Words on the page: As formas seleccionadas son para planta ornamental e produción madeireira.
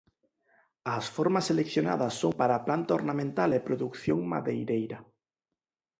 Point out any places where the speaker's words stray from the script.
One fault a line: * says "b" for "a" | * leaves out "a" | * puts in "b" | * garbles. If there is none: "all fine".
all fine